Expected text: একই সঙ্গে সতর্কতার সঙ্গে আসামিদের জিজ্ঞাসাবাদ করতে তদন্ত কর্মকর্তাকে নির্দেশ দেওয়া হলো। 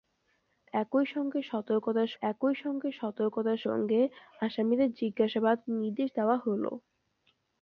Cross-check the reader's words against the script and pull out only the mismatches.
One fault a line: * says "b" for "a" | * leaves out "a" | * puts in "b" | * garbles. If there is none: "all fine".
* puts in "একই"
* puts in "সতর্কতার সঙ্গে"
* leaves out "করতে তদন্ত কর্মকর্তাকে"